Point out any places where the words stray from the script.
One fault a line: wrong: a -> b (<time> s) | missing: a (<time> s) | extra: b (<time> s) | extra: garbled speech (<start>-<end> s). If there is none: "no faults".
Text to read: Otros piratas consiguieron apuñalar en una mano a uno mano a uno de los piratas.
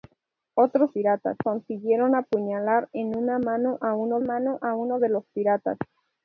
no faults